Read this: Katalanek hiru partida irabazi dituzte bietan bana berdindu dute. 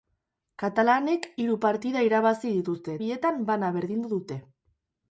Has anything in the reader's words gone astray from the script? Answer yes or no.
no